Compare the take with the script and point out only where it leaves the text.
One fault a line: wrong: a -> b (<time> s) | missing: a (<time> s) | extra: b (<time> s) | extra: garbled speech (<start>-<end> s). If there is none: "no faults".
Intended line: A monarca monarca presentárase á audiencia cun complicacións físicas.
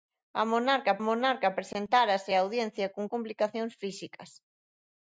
no faults